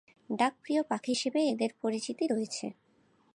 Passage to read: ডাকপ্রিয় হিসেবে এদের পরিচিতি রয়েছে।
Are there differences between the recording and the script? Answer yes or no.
yes